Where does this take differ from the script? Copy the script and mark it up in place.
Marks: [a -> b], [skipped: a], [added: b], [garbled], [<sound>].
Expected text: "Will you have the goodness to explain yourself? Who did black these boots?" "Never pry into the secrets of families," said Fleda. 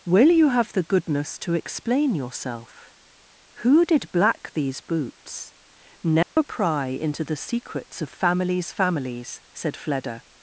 "Will you have the goodness to explain yourself? Who did black these boots?" "Never [dropout] pry into the secrets of families," [added: families] said Fleda.